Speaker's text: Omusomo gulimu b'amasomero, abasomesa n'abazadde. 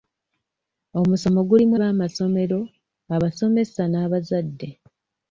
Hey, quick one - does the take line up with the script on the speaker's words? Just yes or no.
yes